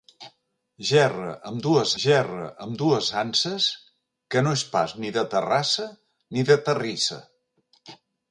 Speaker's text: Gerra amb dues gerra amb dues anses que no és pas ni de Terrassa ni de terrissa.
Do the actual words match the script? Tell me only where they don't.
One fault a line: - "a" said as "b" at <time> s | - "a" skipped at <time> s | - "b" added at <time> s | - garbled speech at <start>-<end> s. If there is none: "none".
none